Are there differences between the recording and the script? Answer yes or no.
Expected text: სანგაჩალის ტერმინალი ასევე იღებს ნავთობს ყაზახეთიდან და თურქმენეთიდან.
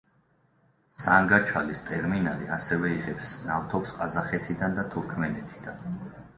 no